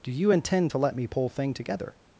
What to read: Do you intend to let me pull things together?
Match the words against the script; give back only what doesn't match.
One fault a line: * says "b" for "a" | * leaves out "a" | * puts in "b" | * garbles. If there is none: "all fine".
* says "thing" for "things"